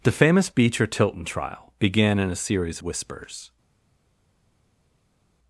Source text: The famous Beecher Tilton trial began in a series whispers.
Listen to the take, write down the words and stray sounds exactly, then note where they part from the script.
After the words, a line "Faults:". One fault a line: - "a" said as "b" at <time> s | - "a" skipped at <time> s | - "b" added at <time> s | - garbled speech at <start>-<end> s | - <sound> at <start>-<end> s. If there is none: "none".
The famous Beecher Tilton trial began in a series whispers.
Faults:
none